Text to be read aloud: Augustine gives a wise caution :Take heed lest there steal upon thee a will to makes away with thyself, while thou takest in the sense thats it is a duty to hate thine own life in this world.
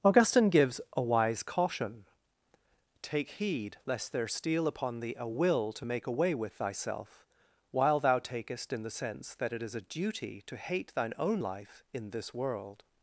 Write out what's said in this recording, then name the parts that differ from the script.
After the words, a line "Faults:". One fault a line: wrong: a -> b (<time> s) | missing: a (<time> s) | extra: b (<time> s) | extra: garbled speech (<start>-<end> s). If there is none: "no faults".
Augustine gives a wise caution :Take heed lest there steal upon thee a will to make away with thyself, while thou takest in the sense that it is a duty to hate thine own life in this world.
Faults:
wrong: makes -> make (5.8 s)
wrong: thats -> that (9.3 s)